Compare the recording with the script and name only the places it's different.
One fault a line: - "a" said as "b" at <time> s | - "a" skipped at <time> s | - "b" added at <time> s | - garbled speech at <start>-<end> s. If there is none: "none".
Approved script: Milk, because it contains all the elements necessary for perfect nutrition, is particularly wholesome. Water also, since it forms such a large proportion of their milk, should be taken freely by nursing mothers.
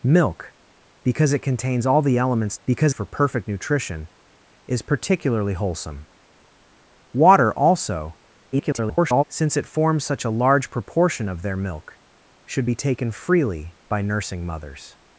- "necessary" said as "because" at 2.7 s
- garbled speech at 8.5-9.2 s